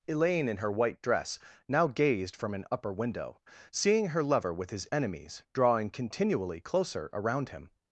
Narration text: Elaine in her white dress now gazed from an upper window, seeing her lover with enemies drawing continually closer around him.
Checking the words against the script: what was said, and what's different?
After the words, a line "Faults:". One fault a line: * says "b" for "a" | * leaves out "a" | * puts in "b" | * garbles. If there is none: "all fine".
Elaine in her white dress now gazed from an upper window, seeing her lover with his enemies drawing continually closer around him.
Faults:
* puts in "his"